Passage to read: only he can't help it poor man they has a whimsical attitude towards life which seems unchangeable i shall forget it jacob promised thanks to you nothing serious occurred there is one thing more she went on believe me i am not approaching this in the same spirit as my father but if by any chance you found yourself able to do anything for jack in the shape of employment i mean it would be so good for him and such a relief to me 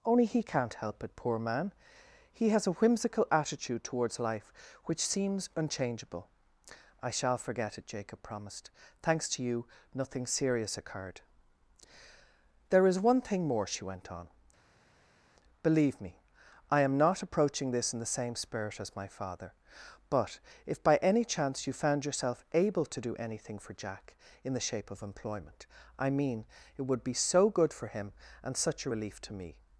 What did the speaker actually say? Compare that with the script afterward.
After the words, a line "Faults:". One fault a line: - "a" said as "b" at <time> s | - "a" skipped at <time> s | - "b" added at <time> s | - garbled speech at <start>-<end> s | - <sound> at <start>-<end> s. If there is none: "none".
only he can't help it poor man he has a whimsical attitude towards life which seems unchangeable i shall forget it jacob promised thanks to you nothing serious occurred there is one thing more she went on believe me i am not approaching this in the same spirit as my father but if by any chance you found yourself able to do anything for jack in the shape of employment i mean it would be so good for him and such a relief to me
Faults:
- "they" said as "he" at 2.3 s